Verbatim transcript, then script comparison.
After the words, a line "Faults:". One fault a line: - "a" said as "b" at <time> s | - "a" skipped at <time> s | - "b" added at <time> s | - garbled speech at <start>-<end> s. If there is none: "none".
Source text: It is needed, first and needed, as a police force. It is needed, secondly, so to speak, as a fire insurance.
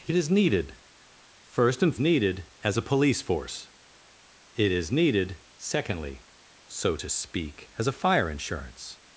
It is needed, first and needed, as a police force. It is needed, secondly, so to speak, as a fire insurance.
Faults:
none